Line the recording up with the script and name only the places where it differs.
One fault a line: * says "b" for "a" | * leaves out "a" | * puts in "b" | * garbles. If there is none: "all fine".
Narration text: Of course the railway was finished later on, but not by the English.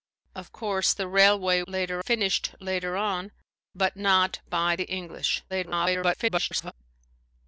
* says "later" for "was"
* garbles